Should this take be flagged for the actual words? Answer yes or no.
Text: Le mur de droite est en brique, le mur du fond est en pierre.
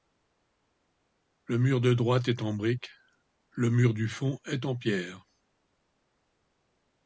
no